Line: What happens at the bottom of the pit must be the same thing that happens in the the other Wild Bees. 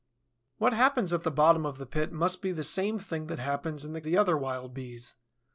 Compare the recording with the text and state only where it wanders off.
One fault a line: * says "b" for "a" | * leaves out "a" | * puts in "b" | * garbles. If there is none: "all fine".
all fine